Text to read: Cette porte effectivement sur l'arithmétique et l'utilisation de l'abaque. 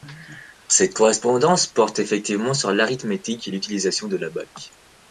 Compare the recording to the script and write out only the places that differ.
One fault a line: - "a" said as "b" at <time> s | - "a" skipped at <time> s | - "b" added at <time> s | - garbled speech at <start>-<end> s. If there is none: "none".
- "correspondance" added at 0.9 s